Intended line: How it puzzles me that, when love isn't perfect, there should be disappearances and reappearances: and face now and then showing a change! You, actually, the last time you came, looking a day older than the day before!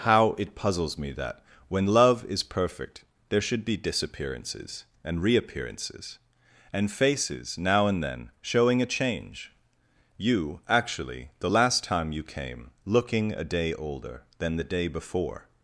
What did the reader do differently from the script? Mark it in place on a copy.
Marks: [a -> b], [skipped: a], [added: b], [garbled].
How it puzzles me that, when love [isn't -> is] perfect, there should be disappearances and reappearances: and [face -> faces] now and then showing a change! You, actually, the last time you came, looking a day older than the day before!